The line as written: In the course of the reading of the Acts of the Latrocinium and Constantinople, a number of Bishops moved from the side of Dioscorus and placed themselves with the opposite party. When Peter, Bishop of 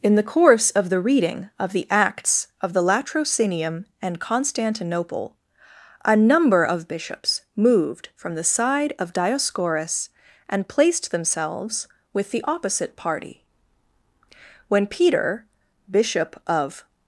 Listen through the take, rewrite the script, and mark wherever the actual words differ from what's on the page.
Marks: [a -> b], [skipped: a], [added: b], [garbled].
In the course of the reading of the Acts of the Latrocinium and Constantinople, a number of Bishops moved from the side of Dioscorus and placed themselves with the opposite party. When Peter, Bishop of